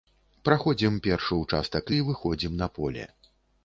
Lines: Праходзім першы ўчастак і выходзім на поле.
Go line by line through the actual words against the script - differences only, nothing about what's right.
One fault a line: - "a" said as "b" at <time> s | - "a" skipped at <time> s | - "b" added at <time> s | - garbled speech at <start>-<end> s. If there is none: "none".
none